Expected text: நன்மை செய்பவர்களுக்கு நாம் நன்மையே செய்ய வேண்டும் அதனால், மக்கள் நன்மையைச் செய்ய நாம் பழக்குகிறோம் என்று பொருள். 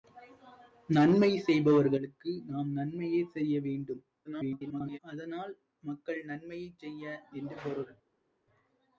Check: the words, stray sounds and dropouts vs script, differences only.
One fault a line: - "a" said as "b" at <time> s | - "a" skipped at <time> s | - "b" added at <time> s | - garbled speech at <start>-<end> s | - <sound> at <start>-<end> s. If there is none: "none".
- garbled speech at 4.2-5.0 s
- "நாம் பழக்குகிறோம்" skipped at 7.0 s